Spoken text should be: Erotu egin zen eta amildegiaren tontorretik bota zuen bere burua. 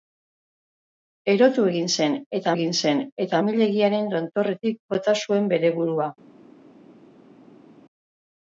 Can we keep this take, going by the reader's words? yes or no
no